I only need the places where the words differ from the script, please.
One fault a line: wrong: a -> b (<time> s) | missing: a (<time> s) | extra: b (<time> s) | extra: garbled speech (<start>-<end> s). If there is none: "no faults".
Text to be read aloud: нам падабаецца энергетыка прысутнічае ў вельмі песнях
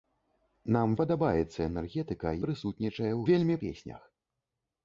no faults